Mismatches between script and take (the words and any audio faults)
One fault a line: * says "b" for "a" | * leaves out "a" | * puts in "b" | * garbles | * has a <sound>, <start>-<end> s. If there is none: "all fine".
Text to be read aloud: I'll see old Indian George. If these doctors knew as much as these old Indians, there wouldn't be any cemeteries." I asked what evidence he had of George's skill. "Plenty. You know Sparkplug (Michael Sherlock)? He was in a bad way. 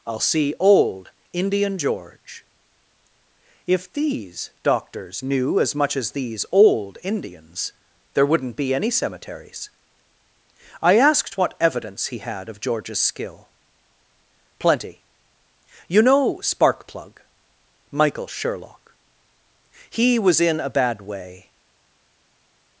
all fine